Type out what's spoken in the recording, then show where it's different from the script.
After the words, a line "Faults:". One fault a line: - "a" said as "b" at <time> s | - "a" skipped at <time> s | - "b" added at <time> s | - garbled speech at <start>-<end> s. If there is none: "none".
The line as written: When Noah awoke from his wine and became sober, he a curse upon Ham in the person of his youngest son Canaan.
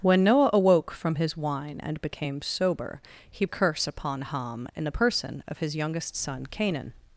When Noah awoke from his wine and became sober, he a curse upon Ham in the person of his youngest son Canaan.
Faults:
none